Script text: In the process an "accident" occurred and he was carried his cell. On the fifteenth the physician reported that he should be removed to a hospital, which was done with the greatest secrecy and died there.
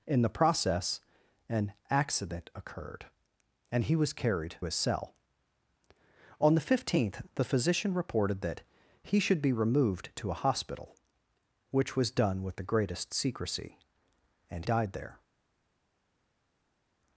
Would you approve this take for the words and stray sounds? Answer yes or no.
yes